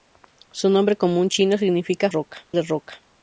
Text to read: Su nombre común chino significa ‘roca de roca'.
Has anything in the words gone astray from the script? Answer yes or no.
no